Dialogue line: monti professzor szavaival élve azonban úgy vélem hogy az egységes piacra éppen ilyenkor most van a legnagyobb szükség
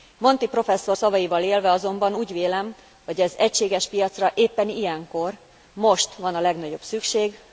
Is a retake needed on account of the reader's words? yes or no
no